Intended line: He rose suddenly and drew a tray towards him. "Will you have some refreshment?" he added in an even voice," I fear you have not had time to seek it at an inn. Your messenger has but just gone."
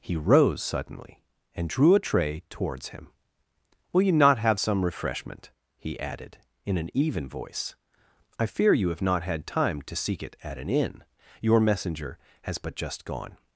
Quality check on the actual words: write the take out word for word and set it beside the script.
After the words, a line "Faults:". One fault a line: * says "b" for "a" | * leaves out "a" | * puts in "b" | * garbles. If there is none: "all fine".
He rose suddenly and drew a tray towards him. "Will you not have some refreshment?" he added in an even voice," I fear you have not had time to seek it at an inn. Your messenger has but just gone."
Faults:
* puts in "not"